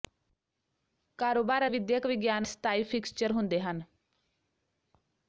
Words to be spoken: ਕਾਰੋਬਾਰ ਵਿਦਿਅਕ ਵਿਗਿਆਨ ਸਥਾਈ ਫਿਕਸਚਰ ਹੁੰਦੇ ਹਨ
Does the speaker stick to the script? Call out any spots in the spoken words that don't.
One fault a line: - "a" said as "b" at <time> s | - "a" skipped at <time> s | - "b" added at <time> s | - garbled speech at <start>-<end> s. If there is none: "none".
none